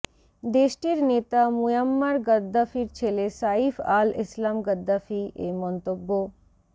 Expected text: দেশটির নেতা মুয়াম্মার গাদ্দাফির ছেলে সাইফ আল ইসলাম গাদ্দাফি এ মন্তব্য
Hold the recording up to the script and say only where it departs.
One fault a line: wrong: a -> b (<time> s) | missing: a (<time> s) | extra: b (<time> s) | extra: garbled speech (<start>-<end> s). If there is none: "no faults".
no faults